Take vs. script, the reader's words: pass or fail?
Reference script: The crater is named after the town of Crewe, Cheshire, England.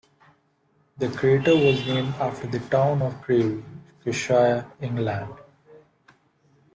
fail